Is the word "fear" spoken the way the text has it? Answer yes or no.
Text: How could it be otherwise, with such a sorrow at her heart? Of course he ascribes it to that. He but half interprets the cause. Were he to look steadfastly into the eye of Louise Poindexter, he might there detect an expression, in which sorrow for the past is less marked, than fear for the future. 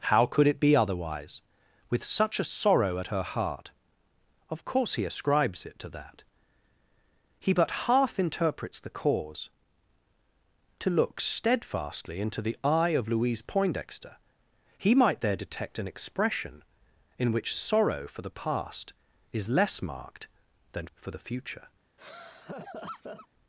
no